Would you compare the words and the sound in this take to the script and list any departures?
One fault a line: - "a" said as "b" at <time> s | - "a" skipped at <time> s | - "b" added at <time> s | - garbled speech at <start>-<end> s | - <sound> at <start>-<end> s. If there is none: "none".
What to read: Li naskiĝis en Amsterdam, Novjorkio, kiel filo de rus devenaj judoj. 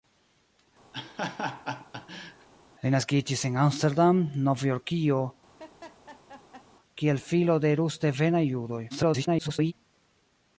- laugh at 0.9-2.5 s
- laugh at 5.6-6.7 s
- garbled speech at 8.9-9.7 s